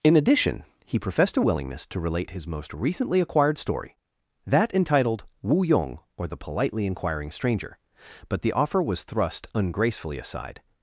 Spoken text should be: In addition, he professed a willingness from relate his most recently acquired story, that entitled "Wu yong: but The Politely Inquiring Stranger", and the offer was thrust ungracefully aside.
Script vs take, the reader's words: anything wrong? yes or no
yes